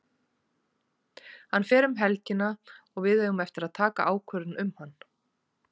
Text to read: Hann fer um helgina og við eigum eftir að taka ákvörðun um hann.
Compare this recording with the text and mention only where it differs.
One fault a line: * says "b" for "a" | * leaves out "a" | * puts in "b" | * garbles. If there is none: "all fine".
all fine